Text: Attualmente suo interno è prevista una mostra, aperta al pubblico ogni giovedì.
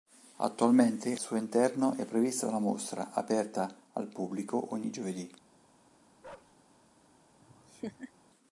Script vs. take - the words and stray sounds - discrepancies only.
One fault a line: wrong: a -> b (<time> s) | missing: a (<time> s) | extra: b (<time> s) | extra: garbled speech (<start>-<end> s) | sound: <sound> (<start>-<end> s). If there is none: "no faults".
sound: bark (6.2-6.6 s)
sound: laugh (7.4-8.1 s)